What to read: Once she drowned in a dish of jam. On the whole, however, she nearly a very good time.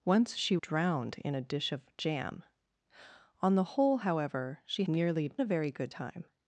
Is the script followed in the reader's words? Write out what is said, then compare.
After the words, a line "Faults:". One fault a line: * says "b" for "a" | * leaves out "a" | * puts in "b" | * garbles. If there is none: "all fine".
Once she drowned in a dish of jam. On the whole, however, she nearly a very good time.
Faults:
all fine